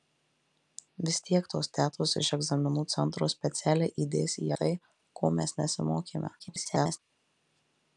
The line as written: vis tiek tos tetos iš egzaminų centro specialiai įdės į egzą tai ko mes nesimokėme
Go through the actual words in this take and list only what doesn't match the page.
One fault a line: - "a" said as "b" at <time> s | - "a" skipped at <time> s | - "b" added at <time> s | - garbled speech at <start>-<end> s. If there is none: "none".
- "egzą" skipped at 4.5 s
- garbled speech at 6.4-7.0 s